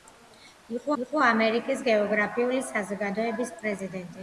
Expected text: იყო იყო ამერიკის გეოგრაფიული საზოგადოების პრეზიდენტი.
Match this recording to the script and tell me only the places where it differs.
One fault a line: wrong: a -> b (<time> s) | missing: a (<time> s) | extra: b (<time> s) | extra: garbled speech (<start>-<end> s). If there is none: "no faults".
no faults